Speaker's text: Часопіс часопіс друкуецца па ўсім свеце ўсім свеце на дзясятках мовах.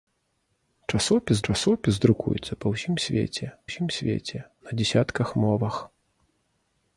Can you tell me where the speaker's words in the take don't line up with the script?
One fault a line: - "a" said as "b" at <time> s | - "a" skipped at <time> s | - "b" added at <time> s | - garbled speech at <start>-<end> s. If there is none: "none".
none